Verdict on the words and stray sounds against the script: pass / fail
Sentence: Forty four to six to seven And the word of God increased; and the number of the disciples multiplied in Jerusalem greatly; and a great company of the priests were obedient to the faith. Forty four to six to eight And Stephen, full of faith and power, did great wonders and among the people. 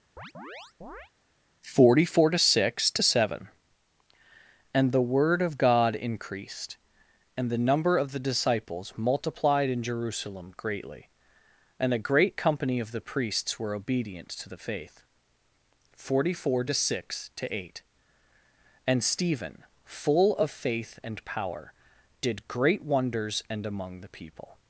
fail